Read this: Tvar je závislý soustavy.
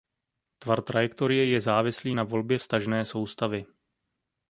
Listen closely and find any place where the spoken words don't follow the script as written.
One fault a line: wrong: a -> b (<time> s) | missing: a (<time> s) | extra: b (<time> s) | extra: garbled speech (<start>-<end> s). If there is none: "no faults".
extra: trajektorie (0.8 s)
extra: na volbě vztažné (2.1 s)